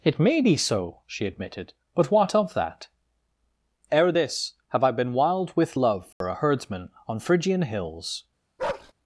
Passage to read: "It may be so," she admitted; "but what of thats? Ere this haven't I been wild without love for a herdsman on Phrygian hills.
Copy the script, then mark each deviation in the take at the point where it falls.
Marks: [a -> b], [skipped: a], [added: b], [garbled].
"It may be so," she admitted; "but what of [thats? -> that] Ere this [haven't -> have] I been wild [without -> with] love for a herdsman on Phrygian hills.